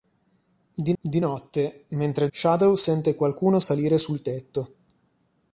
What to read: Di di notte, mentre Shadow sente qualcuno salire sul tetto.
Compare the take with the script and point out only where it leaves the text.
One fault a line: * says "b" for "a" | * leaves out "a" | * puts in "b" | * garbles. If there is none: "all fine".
all fine